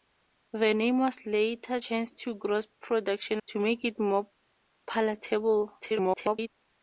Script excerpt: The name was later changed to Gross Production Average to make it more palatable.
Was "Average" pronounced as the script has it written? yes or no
no